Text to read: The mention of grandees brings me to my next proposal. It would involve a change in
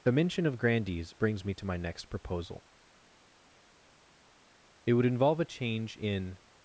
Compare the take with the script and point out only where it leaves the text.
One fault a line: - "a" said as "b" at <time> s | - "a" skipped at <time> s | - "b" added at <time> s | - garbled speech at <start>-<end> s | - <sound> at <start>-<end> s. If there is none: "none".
none